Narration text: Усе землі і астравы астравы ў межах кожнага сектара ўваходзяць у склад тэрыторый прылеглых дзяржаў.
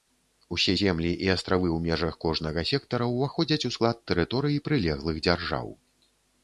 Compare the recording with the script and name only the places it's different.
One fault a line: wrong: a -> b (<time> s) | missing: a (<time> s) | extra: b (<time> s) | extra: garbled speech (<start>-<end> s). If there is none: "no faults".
missing: астравы (1.7 s)